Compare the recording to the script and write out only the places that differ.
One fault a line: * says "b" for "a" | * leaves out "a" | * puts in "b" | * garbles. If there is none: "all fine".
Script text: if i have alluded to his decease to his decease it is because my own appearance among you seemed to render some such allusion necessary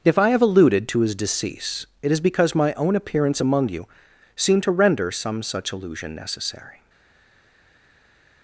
* leaves out "to his decease"